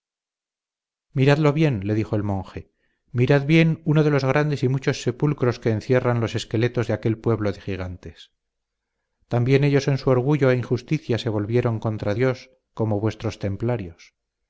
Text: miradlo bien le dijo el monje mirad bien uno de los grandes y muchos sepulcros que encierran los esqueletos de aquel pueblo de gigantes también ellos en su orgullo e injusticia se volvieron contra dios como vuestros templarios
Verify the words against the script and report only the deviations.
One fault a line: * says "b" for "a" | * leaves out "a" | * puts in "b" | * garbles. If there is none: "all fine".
all fine